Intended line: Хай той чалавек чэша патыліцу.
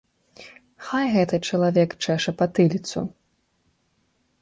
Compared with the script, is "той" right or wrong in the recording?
wrong